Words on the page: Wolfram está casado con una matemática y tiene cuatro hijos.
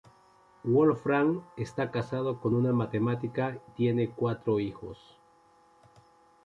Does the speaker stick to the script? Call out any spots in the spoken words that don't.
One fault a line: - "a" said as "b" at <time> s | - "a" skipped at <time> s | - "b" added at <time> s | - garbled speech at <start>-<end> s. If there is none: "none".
- "y" skipped at 3.6 s